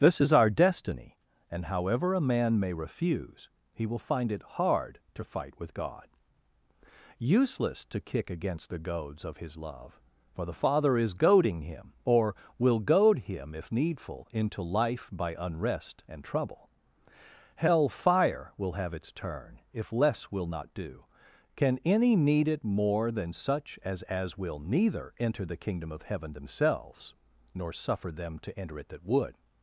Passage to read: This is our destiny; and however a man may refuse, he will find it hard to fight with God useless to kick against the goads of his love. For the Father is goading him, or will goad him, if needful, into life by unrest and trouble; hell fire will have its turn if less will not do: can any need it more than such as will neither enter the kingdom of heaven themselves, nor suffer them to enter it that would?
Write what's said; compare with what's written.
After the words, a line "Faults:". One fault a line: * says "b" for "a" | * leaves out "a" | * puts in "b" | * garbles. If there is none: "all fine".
This is our destiny; and however a man may refuse, he will find it hard to fight with God useless to kick against the goads of his love. For the Father is goading him, or will goad him, if needful, into life by unrest and trouble; hell fire will have its turn if less will not do: can any need it more than such as as will neither enter the kingdom of heaven themselves, nor suffer them to enter it that would?
Faults:
* puts in "as"